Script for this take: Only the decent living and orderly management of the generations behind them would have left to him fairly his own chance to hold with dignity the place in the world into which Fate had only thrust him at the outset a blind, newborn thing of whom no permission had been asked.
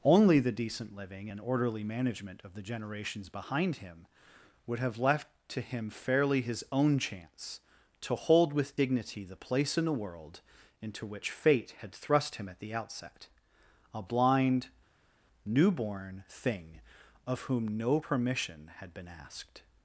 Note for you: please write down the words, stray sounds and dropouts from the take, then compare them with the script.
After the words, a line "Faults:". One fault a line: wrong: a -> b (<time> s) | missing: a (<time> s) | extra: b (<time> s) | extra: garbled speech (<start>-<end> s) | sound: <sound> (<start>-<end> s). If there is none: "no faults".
Only the decent living and orderly management of the generations behind him would have left to him fairly his own chance to hold with dignity the place in the world into which Fate had thrust him at the outset a blind, newborn thing of whom no permission had been asked.
Faults:
wrong: them -> him (3.8 s)
missing: only (11.9 s)